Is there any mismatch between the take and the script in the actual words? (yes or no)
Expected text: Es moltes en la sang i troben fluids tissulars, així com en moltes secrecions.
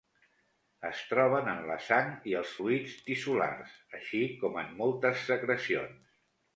yes